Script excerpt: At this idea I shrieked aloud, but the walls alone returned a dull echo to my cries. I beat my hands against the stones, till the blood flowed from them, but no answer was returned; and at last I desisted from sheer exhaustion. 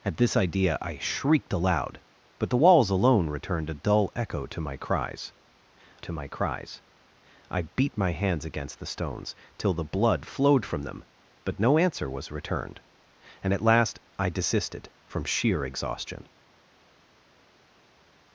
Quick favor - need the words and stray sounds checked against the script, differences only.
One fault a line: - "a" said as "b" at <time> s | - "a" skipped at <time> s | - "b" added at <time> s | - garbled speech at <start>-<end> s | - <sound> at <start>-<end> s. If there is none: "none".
- "to my cries" added at 6.0 s